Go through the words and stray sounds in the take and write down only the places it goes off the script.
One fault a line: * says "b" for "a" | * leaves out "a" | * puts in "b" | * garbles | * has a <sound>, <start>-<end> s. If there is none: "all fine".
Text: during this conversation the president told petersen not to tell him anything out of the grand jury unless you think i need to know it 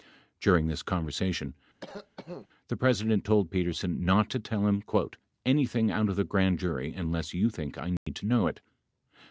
* has a cough, 1.8-2.5 s
* has a dropout, 8.0-8.1 s